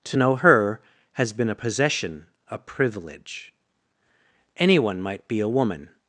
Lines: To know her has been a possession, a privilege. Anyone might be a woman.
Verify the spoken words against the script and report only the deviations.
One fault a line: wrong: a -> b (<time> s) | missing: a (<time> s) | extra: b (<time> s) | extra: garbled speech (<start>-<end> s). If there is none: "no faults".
no faults